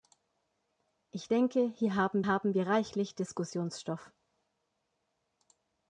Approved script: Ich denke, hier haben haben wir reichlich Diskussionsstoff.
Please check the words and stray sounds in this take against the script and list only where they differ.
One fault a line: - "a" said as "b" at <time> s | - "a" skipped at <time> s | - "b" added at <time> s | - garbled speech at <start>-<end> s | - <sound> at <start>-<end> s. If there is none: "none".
none